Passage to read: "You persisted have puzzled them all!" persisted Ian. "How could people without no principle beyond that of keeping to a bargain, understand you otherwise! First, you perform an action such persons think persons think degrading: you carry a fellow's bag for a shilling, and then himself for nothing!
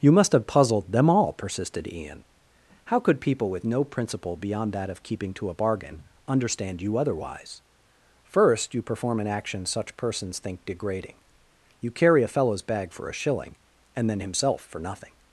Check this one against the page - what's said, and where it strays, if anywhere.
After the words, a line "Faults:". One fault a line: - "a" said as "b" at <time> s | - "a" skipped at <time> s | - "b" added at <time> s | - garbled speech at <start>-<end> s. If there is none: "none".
"You must have puzzled them all!" persisted Ian. "How could people with no principle beyond that of keeping to a bargain, understand you otherwise! First, you perform an action such persons think degrading: you carry a fellow's bag for a shilling, and then himself for nothing!
Faults:
- "persisted" said as "must" at 0.1 s
- "without" said as "with" at 3.5 s
- "persons think" skipped at 10.6 s